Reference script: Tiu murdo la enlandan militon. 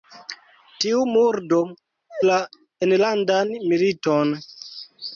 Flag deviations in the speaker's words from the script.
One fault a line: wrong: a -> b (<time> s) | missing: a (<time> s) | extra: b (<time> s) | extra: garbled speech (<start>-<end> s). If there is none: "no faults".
no faults